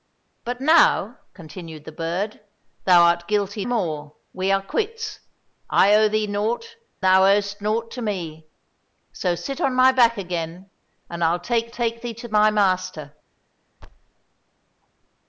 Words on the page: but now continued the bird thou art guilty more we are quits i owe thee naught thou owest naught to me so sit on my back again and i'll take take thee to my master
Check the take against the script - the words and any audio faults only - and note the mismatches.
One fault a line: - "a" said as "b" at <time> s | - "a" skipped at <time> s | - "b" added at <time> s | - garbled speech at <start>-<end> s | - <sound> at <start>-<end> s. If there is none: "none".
- thud at 13.8-14.1 s